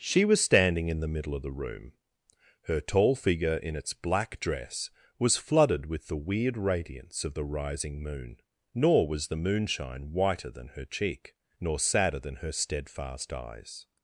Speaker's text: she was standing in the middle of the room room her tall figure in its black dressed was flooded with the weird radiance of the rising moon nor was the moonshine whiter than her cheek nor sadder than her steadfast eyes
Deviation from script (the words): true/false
true